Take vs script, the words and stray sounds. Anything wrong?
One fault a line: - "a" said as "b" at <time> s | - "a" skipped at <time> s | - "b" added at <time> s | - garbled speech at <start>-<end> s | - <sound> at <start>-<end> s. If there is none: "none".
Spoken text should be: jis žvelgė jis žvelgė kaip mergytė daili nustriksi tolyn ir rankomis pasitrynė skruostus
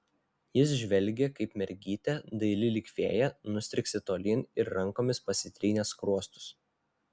- "jis žvelgė" skipped at 1.3 s
- "lyg fėja" added at 2.8 s